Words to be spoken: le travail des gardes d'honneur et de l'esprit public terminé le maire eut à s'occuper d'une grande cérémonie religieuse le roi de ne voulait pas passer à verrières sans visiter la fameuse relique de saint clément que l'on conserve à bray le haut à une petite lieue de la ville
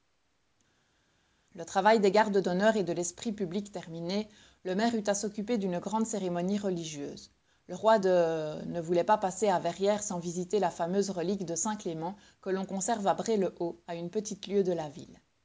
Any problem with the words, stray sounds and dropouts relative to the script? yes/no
no